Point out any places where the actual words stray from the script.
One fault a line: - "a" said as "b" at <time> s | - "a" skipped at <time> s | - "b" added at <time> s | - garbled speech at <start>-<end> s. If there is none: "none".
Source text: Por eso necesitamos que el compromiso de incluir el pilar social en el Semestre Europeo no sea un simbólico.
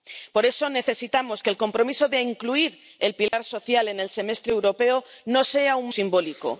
none